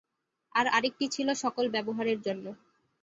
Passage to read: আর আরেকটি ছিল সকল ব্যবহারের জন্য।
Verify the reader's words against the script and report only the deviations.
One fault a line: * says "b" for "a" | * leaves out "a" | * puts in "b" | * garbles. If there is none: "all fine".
all fine